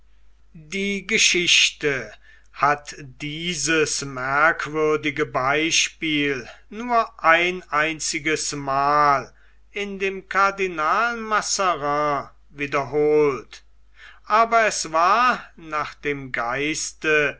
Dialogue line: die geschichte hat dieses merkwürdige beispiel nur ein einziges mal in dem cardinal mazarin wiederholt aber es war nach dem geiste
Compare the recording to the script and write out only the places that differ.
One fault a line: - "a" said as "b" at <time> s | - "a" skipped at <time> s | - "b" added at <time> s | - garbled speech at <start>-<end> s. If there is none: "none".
none